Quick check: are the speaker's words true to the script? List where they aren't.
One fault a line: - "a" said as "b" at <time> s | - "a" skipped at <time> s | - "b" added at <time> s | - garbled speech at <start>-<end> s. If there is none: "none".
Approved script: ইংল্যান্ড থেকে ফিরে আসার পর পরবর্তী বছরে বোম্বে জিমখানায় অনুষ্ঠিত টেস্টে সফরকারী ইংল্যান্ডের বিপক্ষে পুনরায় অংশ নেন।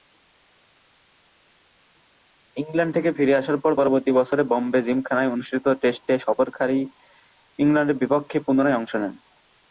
none